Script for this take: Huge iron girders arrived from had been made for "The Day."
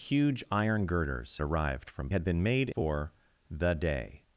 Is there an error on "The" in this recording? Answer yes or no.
no